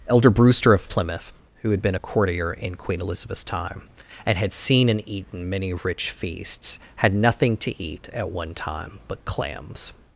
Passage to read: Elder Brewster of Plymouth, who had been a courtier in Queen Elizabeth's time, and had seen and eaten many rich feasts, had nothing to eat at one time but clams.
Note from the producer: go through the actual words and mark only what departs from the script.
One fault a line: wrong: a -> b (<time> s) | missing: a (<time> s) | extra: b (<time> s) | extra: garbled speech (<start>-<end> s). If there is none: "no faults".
no faults